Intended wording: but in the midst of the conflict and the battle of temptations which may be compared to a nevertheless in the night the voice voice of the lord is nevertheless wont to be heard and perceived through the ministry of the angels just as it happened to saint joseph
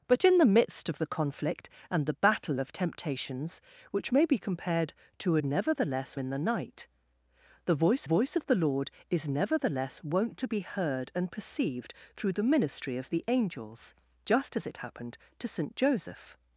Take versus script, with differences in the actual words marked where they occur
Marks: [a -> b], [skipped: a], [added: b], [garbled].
but in the midst of the conflict and the battle of temptations which may be compared to a nevertheless in the night the voice voice of the lord is nevertheless wont to be heard and perceived through the ministry of the angels just as it happened to saint joseph